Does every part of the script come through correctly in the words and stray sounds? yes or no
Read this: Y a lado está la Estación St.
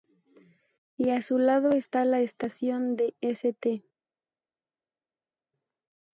no